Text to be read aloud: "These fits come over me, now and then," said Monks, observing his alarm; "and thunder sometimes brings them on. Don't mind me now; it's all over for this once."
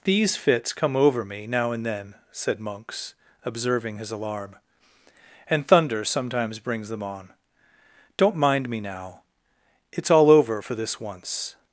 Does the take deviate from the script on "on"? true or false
false